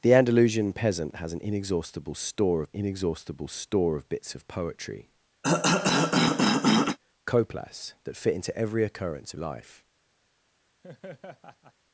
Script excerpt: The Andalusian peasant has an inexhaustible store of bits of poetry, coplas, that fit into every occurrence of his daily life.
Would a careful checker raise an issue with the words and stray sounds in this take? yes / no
yes